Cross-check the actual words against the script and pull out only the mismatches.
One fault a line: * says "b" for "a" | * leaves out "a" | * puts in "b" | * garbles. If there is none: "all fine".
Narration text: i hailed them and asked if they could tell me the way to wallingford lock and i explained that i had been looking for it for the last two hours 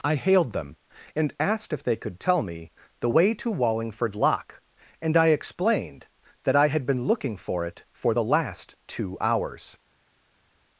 all fine